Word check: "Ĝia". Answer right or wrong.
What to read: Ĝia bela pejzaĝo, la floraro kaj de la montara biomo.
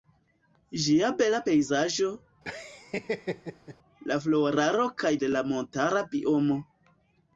right